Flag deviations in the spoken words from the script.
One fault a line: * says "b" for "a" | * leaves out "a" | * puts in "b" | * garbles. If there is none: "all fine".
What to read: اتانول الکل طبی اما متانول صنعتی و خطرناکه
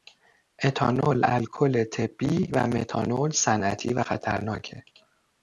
* says "و" for "اما"